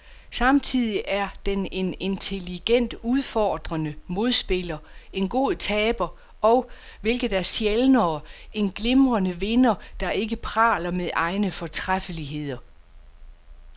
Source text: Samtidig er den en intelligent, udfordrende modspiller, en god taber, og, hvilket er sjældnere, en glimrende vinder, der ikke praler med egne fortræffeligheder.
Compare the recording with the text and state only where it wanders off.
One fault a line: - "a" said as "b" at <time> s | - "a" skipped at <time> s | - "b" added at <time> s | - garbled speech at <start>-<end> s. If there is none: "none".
none